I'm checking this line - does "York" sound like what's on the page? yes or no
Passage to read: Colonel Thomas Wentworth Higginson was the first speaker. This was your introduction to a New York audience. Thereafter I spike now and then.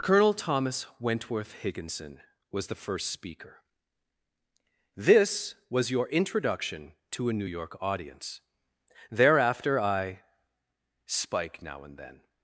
yes